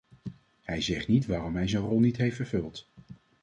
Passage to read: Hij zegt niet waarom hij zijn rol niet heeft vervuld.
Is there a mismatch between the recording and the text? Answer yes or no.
no